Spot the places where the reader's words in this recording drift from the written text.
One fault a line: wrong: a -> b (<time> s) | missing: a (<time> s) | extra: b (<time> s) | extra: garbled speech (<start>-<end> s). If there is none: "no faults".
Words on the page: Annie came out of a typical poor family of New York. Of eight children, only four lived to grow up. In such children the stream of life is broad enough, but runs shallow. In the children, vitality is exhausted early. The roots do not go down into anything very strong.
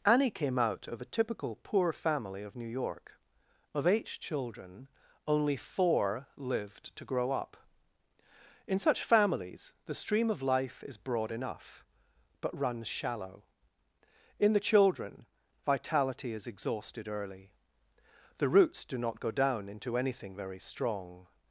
wrong: children -> families (9.0 s)